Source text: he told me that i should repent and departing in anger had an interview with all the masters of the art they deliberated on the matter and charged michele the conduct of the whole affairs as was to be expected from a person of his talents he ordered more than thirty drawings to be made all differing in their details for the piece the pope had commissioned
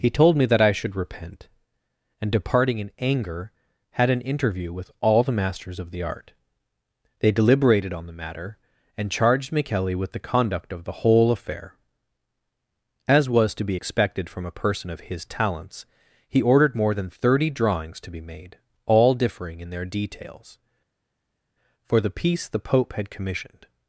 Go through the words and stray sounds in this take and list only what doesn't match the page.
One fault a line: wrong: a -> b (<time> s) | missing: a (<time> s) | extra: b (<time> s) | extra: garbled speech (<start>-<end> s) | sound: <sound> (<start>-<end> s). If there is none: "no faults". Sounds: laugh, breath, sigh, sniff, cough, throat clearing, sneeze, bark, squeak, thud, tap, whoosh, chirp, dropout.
extra: with (9.9 s)
wrong: affairs -> affair (11.3 s)